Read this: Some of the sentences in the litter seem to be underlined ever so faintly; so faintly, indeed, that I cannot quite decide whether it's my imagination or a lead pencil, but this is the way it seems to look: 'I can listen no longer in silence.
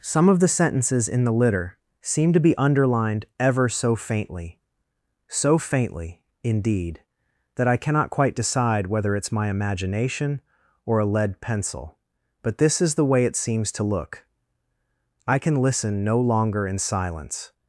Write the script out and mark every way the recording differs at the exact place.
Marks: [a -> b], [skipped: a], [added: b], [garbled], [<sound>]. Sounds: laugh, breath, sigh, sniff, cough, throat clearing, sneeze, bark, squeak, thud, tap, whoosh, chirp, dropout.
Some of the sentences in the litter seem to be underlined ever so faintly; so faintly, indeed, that I cannot quite decide whether it's my imagination or a lead pencil, but this is the way it seems to look: 'I can listen no longer in silence.